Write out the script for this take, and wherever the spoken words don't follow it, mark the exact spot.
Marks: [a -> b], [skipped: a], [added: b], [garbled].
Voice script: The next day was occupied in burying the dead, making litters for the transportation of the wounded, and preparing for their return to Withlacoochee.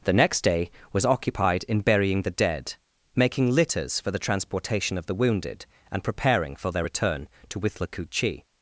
The next day was occupied in burying the dead, making litters for the transportation of the wounded, and preparing for their return to Withlacoochee.